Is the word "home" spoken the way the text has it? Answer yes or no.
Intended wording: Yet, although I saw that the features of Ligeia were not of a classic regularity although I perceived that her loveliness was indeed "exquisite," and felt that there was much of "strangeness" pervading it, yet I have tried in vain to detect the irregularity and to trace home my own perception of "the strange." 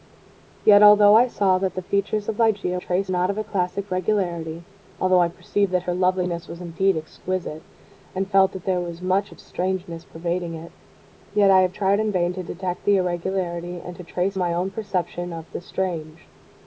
no